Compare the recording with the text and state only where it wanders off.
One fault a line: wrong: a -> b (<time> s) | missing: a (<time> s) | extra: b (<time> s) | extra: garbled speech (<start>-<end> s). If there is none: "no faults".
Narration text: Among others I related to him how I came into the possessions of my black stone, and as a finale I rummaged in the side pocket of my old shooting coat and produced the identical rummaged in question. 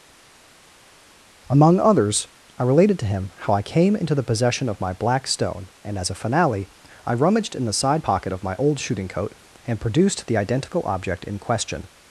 wrong: possessions -> possession (4.2 s)
wrong: rummaged -> object (10.8 s)